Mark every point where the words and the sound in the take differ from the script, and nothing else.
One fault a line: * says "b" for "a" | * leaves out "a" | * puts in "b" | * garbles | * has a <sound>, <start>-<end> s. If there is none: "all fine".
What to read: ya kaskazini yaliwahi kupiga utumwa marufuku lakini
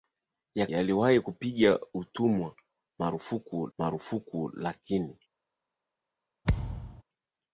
* leaves out "kaskazini"
* puts in "marufuku"
* has a thud, 6.4-7.0 s